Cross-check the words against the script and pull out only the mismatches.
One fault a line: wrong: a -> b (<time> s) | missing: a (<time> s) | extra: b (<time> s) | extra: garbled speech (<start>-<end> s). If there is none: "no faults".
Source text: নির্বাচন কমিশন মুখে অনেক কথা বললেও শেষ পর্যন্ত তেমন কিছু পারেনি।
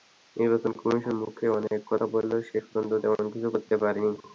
extra: করতে (3.5 s)